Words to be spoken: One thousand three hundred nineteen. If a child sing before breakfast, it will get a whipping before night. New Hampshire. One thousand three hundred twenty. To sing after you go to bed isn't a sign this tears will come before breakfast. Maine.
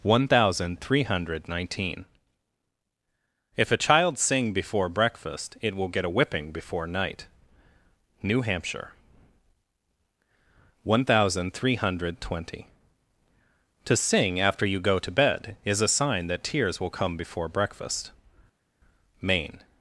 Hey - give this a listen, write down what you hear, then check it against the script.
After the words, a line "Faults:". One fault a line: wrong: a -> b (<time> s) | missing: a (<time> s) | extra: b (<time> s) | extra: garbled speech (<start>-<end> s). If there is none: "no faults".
One thousand three hundred nineteen. If a child sing before breakfast, it will get a whipping before night. New Hampshire. One thousand three hundred twenty. To sing after you go to bed is a sign that tears will come before breakfast. Maine.
Faults:
wrong: isn't -> is (15.6 s)
wrong: this -> that (16.3 s)